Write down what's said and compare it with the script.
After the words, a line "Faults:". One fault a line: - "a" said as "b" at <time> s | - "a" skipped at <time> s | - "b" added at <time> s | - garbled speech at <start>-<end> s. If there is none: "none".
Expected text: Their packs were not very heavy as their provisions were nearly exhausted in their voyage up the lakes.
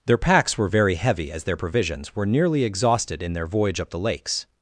Their packs were very heavy as their provisions were nearly exhausted in their voyage up the lakes.
Faults:
- "not" skipped at 0.7 s